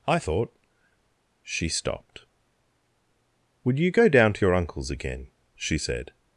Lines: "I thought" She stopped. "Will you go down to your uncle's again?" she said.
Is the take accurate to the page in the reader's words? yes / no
no